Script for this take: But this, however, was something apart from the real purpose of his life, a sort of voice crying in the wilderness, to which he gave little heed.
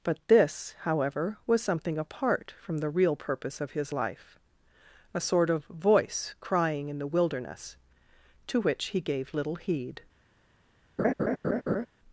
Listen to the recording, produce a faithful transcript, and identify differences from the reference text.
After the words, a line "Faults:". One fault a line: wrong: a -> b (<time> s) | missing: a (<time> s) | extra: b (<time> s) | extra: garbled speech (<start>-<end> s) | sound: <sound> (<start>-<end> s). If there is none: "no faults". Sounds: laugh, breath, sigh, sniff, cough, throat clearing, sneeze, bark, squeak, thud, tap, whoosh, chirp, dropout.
But this, however, was something apart from the real purpose of his life, a sort of voice crying in the wilderness, to which he gave little heed.
Faults:
sound: laugh (11.0-11.9 s)